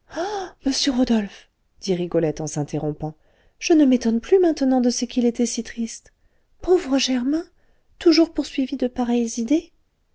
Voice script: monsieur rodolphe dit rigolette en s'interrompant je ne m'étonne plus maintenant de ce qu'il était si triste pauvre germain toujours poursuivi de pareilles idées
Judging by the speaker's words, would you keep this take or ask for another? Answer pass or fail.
pass